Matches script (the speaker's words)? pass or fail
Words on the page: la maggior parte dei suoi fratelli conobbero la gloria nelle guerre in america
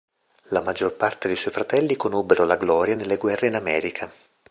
pass